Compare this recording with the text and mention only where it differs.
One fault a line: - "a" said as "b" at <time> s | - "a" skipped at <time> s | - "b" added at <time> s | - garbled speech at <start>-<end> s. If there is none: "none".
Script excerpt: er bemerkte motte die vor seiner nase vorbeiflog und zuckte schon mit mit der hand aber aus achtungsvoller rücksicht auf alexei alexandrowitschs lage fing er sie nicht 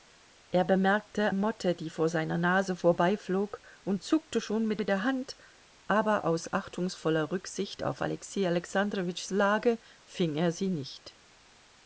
none